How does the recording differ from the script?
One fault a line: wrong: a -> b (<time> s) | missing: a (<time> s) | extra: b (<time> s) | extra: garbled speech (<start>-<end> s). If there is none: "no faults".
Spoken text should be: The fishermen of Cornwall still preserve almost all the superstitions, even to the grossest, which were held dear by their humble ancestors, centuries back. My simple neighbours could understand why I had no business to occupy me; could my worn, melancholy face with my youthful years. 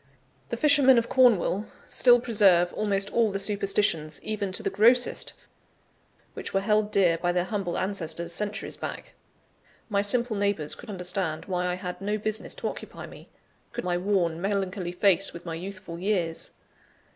no faults